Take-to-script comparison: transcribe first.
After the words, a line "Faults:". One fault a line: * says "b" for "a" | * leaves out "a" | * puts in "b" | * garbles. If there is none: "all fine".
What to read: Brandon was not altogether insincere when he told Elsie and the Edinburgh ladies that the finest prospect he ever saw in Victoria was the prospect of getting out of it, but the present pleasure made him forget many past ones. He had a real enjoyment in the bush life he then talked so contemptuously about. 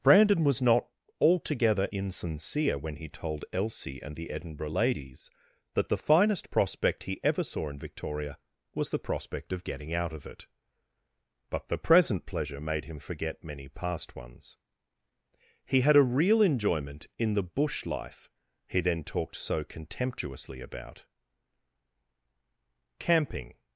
Brandon was not altogether insincere when he told Elsie and the Edinburgh ladies that the finest prospect he ever saw in Victoria was the prospect of getting out of it, but the present pleasure made him forget many past ones. He had a real enjoyment in the bush life he then talked so contemptuously about. Camping
Faults:
* puts in "Camping"